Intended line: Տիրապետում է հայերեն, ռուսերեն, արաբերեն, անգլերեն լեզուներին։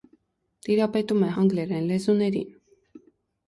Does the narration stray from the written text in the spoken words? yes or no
yes